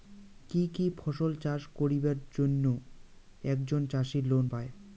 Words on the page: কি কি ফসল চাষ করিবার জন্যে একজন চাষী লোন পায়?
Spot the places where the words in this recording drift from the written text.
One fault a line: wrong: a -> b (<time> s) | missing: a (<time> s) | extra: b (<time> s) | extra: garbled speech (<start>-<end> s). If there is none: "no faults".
no faults